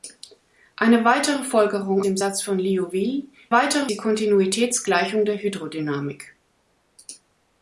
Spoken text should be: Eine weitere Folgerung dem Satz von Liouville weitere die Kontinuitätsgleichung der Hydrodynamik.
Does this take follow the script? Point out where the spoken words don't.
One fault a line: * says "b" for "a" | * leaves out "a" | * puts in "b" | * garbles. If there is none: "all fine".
all fine